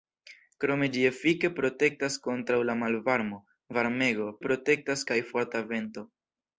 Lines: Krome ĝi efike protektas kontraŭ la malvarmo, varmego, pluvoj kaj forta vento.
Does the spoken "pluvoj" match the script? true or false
false